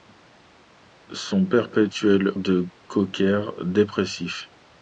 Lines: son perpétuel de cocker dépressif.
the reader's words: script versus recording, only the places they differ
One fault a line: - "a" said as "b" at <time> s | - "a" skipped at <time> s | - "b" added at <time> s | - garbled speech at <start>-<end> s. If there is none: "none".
none